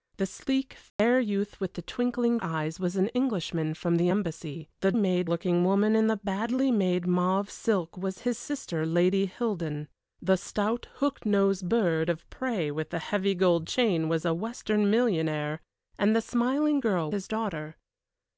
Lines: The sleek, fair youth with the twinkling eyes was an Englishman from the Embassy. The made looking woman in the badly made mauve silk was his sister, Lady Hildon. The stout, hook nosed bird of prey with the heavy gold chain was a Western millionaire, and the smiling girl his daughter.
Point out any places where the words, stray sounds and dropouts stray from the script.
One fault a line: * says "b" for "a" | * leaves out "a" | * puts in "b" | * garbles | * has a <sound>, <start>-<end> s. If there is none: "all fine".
* has a dropout, 0.9-1.0 s